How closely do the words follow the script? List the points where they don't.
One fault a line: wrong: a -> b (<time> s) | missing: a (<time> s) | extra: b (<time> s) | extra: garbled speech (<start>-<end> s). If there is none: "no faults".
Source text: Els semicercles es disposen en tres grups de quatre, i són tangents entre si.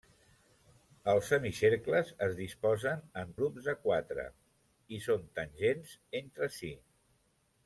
missing: tres (3.4 s)